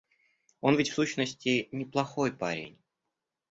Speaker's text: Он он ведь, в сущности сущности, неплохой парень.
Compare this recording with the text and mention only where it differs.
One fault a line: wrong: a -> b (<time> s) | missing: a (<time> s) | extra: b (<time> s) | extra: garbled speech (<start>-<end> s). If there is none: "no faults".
missing: он (0.8 s)
missing: сущности (1.7 s)